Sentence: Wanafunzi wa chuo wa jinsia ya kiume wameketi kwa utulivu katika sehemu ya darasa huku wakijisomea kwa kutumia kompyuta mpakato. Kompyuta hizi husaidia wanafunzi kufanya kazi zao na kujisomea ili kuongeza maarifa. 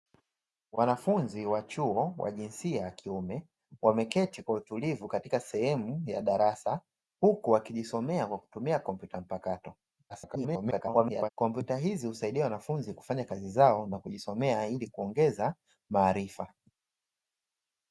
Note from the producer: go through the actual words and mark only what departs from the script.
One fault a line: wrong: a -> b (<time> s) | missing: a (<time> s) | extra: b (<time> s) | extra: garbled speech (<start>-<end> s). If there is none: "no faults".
extra: garbled speech (10.1-11.3 s)